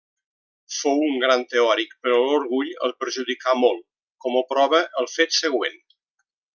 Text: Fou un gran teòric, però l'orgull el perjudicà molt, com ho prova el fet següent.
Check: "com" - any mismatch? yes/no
no